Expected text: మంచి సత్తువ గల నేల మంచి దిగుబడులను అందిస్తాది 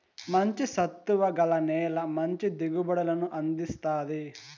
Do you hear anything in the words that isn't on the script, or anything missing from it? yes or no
no